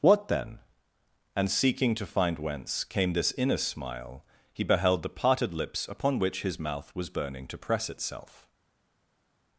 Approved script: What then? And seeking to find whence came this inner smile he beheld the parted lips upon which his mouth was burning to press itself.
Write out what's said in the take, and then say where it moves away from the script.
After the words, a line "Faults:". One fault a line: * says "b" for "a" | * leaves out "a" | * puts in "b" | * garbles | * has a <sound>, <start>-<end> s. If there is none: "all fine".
What then? And seeking to find whence came this inner smile he beheld the parted lips upon which his mouth was burning to press itself.
Faults:
all fine